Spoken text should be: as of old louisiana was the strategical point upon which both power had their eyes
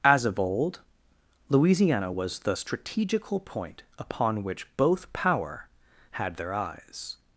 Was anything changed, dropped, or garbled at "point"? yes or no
no